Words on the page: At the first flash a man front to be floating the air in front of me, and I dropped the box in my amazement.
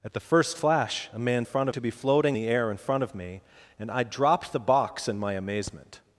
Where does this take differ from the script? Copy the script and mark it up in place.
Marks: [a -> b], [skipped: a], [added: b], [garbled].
At the first flash a man front to be floating the air in front of me, and I dropped the box in my amazement.